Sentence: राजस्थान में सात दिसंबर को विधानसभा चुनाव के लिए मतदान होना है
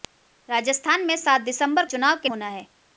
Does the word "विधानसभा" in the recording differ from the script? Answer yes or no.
yes